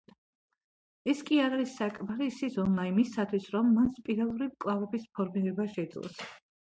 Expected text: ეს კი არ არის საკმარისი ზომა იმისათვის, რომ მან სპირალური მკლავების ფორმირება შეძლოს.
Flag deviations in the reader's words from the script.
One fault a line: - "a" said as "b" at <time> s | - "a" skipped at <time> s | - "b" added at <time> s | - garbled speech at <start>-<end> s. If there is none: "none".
none